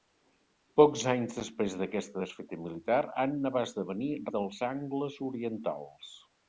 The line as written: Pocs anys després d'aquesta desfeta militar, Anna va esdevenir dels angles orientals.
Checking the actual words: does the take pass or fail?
pass